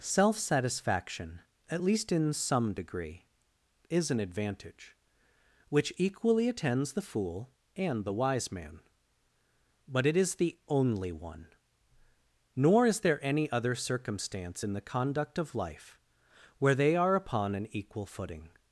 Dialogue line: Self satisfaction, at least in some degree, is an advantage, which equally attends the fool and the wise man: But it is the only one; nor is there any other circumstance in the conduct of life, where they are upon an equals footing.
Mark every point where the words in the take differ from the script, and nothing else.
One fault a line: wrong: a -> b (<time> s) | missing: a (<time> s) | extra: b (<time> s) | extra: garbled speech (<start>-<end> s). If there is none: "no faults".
wrong: equals -> equal (17.7 s)